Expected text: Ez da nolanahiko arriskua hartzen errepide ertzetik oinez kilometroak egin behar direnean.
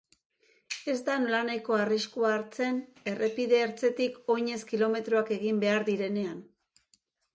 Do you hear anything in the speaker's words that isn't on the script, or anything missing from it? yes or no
no